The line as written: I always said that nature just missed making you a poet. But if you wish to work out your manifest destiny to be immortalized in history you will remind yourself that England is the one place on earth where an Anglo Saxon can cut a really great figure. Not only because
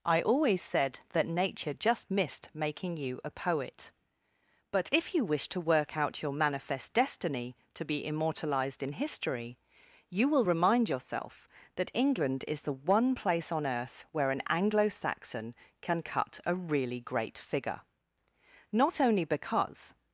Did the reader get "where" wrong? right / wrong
right